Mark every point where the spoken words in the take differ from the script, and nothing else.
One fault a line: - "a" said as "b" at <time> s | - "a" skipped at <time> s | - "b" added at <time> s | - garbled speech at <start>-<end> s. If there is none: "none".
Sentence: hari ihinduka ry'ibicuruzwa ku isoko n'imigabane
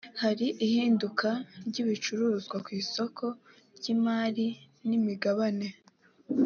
- "ry'imari" added at 3.8 s